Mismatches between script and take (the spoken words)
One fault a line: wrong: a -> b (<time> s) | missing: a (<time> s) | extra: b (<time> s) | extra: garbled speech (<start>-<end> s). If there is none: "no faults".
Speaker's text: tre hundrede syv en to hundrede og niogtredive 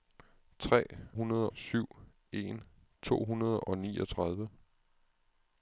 no faults